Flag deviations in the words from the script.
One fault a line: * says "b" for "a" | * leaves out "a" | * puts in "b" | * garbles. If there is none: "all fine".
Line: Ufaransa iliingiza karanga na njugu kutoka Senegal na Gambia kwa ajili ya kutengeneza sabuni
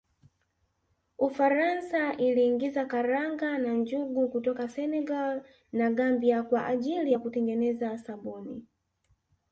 all fine